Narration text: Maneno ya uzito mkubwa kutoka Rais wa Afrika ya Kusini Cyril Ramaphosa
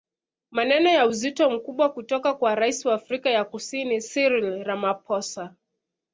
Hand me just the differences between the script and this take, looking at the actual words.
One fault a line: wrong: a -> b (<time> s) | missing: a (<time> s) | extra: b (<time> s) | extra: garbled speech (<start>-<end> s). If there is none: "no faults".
extra: kwa (2.3 s)